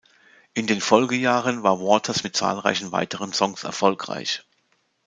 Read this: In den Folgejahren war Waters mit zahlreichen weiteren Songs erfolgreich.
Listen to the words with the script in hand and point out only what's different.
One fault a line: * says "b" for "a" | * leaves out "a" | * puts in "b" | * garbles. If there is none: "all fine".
all fine